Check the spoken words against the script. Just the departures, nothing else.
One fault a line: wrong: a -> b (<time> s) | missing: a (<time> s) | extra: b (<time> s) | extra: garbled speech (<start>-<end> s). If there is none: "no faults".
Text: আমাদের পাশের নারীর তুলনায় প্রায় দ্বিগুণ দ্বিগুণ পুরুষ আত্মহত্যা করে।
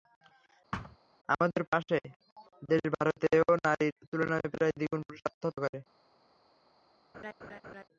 extra: দেশ ভারতেও (2.6 s)
missing: দ্বিগুণ (5.0 s)